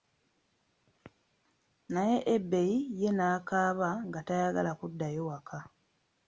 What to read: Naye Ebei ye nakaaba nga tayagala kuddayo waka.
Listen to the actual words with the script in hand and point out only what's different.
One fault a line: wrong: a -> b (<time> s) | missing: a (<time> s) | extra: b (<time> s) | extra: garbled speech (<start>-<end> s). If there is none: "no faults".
no faults